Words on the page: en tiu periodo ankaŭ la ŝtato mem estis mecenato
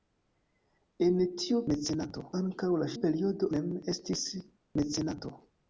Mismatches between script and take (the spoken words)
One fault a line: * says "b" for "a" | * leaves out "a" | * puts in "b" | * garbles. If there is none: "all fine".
* says "mecenato" for "periodo"
* says "periodo" for "ŝtato"